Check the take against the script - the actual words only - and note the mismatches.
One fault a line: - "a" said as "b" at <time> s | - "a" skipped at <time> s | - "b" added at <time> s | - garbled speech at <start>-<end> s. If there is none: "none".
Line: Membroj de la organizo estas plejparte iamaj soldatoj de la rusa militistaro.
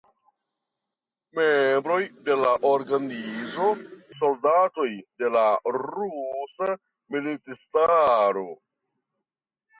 - "estas plejparte iamaj" skipped at 3.7 s